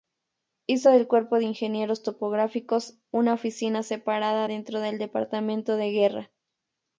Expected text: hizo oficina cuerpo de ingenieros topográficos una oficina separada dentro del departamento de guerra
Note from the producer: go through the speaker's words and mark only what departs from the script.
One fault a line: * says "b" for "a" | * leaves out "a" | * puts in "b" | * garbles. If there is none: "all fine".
* says "del" for "oficina"